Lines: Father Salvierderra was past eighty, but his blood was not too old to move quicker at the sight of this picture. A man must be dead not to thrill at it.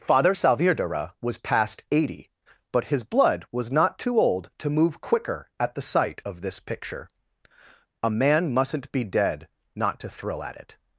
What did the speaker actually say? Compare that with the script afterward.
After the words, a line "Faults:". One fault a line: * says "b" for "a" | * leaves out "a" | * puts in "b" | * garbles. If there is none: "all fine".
Father Salvierderra was past eighty, but his blood was not too old to move quicker at the sight of this picture. A man mustn't be dead not to thrill at it.
Faults:
* says "mustn't" for "must"